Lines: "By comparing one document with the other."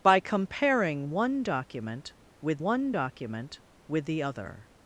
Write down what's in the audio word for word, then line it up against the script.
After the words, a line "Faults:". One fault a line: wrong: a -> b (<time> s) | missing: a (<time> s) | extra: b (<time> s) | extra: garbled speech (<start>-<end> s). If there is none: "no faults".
"By comparing one document with one document with the other."
Faults:
extra: one document with (2.6 s)